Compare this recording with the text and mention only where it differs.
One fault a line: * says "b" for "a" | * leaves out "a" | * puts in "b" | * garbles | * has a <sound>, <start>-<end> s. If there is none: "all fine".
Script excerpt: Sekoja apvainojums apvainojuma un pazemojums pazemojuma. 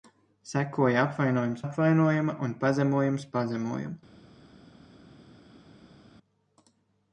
all fine